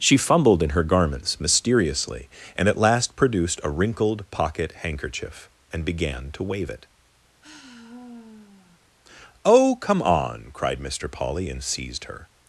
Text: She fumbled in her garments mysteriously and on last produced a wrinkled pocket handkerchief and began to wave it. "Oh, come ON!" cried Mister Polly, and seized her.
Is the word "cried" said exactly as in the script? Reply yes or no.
yes